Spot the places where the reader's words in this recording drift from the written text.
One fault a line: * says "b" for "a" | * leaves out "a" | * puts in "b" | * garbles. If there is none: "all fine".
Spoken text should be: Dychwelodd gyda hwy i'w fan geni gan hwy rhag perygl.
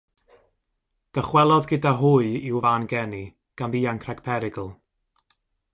* says "ddianc" for "hwy"